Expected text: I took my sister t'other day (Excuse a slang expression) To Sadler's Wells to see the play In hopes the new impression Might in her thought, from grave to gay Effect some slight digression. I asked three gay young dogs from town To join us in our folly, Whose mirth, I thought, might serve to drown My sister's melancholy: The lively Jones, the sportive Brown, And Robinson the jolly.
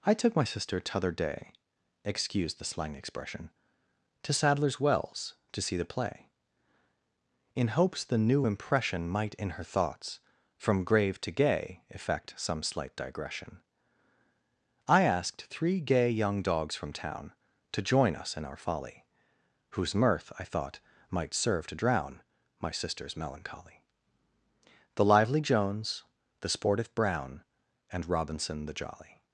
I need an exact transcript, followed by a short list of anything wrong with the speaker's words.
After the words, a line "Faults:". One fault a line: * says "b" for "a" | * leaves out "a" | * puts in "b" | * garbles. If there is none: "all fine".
I took my sister t'other day (Excuse the slang expression) To Sadler's Wells to see the play In hopes the new impression Might in her thoughts, from grave to gay Effect some slight digression. I asked three gay young dogs from town To join us in our folly, Whose mirth, I thought, might serve to drown My sister's melancholy: The lively Jones, the sportive Brown, And Robinson the jolly.
Faults:
* says "the" for "a"
* says "thoughts" for "thought"